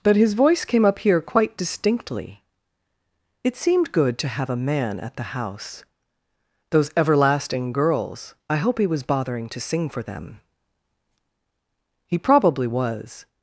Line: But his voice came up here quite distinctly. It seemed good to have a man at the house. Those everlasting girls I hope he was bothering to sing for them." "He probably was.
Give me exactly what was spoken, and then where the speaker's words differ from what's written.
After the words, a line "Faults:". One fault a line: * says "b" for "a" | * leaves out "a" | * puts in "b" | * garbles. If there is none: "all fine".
But his voice came up here quite distinctly. It seemed good to have a man at the house. Those everlasting girls I hope he was bothering to sing for them." "He probably was.
Faults:
all fine